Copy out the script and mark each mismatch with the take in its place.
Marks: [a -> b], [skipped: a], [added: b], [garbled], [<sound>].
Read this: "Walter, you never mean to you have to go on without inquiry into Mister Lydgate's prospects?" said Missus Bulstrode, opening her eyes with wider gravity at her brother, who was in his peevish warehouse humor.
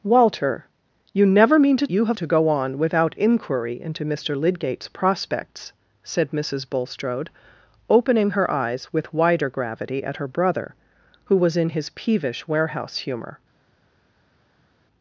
"Walter, you never mean to you have to go on without inquiry into Mister Lydgate's prospects?" said Missus Bulstrode, opening her eyes with wider gravity at her brother, who was in his peevish warehouse humor.